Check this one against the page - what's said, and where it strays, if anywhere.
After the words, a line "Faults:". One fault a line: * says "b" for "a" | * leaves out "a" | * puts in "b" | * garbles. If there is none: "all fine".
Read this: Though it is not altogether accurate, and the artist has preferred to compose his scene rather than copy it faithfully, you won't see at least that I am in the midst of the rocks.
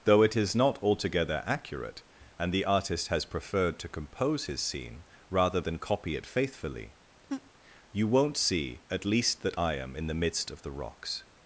Though it is not altogether accurate, and the artist has preferred to compose his scene rather than copy it faithfully, you won't see at least that I am in the midst of the rocks.
Faults:
all fine